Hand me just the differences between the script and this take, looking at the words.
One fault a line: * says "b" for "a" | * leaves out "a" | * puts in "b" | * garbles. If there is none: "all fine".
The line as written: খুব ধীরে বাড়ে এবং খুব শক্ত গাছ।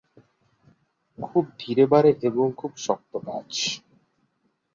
all fine